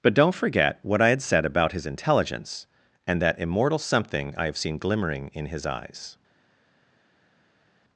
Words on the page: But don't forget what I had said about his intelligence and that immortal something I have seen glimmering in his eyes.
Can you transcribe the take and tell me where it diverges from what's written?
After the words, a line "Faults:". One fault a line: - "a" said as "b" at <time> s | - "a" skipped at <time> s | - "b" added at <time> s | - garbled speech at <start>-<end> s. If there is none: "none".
But don't forget what I had said about his intelligence and that immortal something I have seen glimmering in his eyes.
Faults:
none